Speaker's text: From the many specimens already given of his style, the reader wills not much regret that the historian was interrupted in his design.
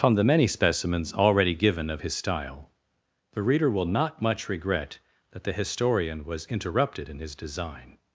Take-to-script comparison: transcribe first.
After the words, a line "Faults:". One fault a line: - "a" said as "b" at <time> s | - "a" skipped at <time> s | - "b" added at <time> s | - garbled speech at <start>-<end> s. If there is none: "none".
From the many specimens already given of his style, the reader will not much regret that the historian was interrupted in his design.
Faults:
- "wills" said as "will" at 3.7 s